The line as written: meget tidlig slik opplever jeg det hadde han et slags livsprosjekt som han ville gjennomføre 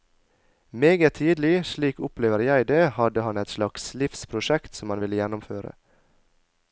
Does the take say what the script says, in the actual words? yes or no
yes